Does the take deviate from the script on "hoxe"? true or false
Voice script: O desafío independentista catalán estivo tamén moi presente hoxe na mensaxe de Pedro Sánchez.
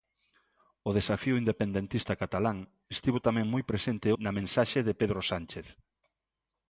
true